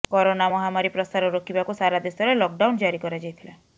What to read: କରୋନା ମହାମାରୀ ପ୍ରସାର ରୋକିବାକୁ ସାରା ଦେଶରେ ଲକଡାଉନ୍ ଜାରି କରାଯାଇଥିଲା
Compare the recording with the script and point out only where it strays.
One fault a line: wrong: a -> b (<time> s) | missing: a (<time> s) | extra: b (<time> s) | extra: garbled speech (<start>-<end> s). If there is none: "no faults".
no faults